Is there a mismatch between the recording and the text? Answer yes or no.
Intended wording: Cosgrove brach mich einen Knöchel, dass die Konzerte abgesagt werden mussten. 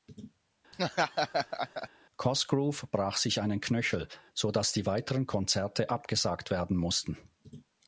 yes